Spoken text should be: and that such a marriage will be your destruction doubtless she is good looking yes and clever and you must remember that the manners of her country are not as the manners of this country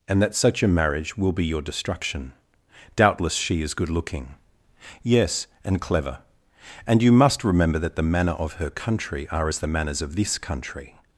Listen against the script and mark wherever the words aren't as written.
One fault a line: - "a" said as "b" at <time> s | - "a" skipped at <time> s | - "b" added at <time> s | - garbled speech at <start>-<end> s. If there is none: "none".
- "manners" said as "manner" at 8.0 s
- "not" skipped at 9.5 s